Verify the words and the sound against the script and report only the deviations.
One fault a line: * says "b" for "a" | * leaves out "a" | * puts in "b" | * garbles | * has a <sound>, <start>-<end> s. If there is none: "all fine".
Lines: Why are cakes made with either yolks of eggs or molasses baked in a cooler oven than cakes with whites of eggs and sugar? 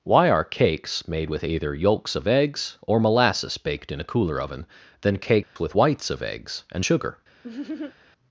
* has a dropout, 5.4-5.6 s
* has a laugh, 7.4-7.9 s